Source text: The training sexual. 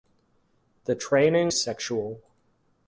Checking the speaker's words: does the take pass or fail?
pass